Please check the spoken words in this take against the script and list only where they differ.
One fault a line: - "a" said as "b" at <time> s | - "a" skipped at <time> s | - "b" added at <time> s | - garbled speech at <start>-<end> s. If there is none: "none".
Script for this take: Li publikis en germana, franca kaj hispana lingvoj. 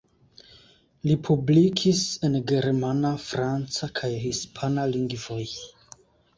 none